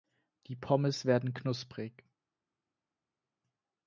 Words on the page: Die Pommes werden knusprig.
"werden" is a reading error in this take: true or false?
false